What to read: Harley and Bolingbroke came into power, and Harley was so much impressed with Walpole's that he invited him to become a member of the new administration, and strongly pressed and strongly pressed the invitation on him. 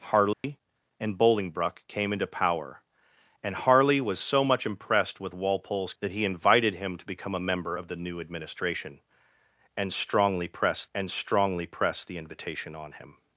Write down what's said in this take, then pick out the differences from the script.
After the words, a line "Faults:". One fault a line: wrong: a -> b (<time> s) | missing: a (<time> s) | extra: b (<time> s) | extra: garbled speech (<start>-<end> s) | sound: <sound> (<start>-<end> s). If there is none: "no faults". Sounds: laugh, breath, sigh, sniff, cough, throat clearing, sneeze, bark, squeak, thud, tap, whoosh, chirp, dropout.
Harley and Bolingbroke came into power, and Harley was so much impressed with Walpole's that he invited him to become a member of the new administration, and strongly pressed and strongly pressed the invitation on him.
Faults:
sound: dropout (0.3-0.4 s)